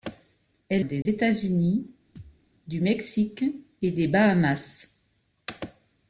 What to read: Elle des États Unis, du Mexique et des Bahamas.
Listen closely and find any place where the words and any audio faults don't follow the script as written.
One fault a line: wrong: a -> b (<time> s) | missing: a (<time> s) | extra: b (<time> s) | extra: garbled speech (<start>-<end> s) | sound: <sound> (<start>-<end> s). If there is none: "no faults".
sound: dropout (1.0-1.1 s)
sound: thud (2.2-2.4 s)